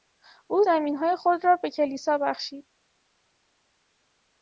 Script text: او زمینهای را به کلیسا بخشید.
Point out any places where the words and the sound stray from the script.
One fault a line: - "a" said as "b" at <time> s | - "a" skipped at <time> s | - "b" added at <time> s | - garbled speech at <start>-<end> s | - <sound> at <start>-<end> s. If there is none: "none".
- "خود" added at 1.1 s